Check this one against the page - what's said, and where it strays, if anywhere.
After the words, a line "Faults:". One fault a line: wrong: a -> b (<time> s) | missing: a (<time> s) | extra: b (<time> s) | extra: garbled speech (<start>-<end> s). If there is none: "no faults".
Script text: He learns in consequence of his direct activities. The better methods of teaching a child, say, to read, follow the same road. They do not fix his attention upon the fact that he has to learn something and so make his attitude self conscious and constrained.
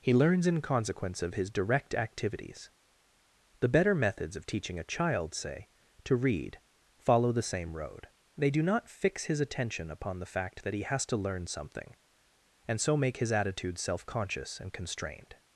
He learns in consequence of his direct activities. The better methods of teaching a child, say, to read, follow the same road. They do not fix his attention upon the fact that he has to learn something and so make his attitude self conscious and constrained.
Faults:
no faults